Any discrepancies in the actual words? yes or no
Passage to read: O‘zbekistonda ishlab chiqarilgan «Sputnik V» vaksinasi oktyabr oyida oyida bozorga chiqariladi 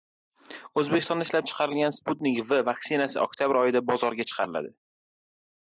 yes